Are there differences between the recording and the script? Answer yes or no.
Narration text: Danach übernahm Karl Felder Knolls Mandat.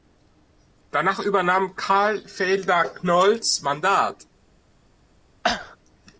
no